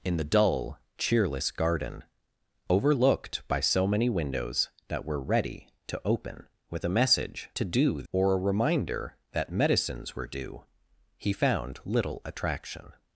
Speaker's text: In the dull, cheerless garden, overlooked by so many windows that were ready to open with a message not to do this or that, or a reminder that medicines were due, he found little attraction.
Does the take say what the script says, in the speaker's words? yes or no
no